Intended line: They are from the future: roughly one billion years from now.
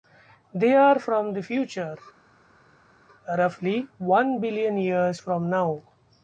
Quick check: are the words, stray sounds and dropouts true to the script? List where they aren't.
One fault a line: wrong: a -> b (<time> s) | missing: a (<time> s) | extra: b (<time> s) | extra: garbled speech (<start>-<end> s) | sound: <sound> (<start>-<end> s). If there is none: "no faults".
no faults